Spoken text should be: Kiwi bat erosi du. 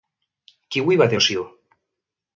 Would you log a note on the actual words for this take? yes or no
no